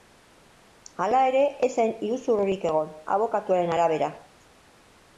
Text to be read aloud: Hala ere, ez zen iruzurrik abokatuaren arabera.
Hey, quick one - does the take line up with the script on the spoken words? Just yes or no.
no